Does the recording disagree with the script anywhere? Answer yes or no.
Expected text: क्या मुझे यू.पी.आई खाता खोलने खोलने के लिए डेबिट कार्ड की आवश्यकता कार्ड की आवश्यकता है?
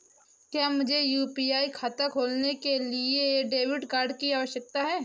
yes